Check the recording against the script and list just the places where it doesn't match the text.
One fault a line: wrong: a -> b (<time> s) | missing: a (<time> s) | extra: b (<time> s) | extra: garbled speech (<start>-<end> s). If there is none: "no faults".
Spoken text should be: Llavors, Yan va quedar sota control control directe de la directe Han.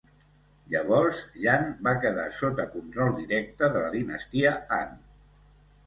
missing: control (3.1 s)
wrong: directe -> dinastia (4.0 s)